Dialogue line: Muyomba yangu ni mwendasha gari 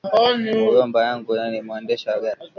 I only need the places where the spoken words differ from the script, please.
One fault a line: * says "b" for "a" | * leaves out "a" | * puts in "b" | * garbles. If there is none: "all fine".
all fine